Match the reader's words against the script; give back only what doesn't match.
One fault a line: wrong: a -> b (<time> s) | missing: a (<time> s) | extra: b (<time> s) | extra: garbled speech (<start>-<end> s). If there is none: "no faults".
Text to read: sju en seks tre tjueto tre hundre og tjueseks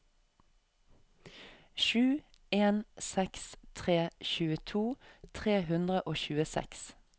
no faults